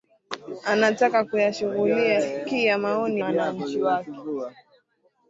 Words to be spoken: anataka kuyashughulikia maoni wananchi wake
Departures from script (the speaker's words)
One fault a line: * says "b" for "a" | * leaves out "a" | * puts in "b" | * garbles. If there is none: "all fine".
all fine